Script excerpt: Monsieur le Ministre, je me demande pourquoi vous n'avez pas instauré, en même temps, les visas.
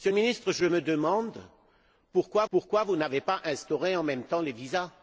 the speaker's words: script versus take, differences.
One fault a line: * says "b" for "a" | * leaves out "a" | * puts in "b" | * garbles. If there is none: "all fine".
* puts in "pourquoi"